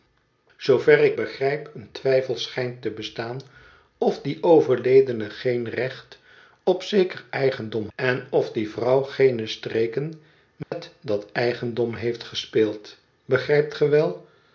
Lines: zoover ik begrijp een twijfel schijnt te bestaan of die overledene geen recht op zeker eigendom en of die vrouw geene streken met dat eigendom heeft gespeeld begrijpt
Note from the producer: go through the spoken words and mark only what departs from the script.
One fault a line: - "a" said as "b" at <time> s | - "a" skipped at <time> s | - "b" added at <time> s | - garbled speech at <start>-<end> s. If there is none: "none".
none